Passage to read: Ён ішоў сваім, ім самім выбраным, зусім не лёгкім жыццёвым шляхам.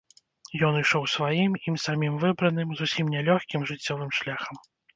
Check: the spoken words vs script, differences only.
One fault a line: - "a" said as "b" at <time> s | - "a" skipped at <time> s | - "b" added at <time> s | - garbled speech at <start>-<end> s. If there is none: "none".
none